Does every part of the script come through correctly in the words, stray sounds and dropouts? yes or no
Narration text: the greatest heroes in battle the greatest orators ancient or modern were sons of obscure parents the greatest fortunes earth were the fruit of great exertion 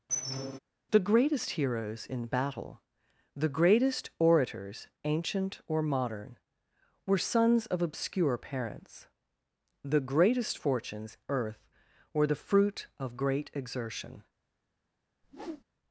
no